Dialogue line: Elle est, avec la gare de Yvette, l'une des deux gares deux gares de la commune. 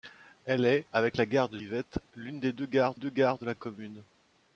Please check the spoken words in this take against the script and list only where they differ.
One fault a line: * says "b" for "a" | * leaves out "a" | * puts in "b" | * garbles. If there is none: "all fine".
all fine